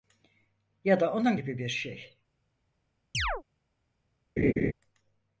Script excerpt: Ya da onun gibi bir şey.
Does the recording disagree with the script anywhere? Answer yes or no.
no